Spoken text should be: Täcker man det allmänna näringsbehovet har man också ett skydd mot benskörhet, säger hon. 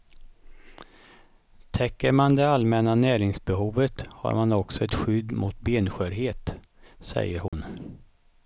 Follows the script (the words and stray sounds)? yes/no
no